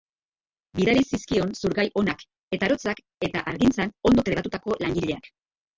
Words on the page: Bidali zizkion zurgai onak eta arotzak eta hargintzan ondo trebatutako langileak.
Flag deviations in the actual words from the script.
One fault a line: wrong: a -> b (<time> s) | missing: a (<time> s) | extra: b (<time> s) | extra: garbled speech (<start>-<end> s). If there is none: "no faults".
no faults